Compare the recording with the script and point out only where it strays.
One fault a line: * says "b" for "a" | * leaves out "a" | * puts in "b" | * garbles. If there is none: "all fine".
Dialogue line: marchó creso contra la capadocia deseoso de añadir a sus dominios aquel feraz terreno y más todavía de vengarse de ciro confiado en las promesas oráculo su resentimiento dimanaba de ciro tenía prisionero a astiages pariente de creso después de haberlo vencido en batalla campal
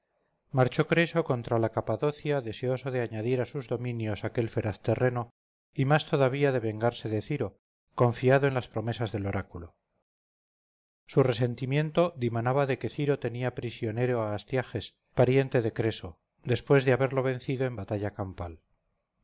* puts in "del"
* puts in "que"